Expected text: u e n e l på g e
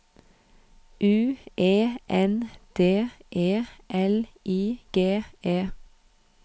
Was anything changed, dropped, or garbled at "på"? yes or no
yes